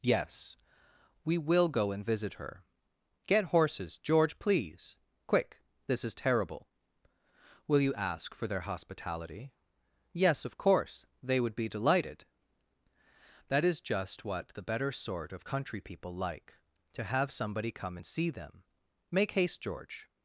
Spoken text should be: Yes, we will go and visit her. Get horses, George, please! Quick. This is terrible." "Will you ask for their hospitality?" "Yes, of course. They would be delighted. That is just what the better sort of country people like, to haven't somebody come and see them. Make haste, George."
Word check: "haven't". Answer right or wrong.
wrong